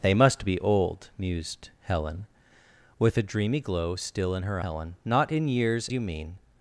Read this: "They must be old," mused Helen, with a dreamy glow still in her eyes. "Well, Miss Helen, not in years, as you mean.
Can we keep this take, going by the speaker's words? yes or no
no